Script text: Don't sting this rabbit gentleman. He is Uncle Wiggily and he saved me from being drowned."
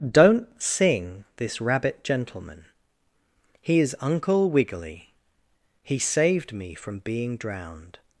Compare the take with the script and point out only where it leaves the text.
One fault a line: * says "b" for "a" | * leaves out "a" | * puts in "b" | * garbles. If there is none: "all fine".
* says "sing" for "sting"
* leaves out "and"